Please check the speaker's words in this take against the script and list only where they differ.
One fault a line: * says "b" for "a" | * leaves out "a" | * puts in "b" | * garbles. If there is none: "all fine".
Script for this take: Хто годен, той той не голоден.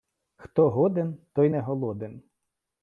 * leaves out "той"